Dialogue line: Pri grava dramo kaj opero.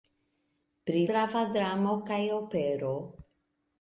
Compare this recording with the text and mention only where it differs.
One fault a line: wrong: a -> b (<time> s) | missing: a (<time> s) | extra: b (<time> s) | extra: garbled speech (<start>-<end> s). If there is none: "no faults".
no faults